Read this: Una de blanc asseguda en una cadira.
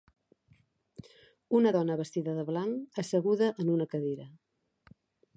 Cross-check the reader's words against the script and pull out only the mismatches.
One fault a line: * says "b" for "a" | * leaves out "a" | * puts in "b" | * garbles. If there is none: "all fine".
* puts in "dona vestida"